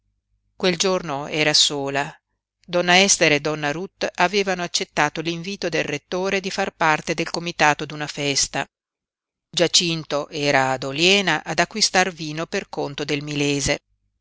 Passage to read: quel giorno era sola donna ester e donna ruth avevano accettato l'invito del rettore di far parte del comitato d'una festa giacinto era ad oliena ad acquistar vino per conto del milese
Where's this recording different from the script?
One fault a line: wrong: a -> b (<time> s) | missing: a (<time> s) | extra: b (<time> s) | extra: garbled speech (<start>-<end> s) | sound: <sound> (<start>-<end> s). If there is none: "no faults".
no faults